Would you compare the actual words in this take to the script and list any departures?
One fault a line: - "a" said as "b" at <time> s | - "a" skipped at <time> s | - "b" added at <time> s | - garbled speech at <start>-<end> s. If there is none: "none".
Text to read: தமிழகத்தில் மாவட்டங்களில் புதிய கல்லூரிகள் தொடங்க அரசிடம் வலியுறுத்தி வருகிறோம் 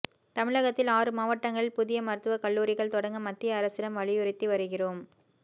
- "ஆறு" added at 0.9 s
- "மருத்துவக்" added at 2.0 s
- "மத்திய" added at 3.3 s